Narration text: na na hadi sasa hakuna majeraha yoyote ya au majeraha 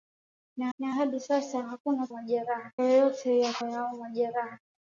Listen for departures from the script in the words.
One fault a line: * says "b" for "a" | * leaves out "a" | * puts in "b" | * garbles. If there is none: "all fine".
all fine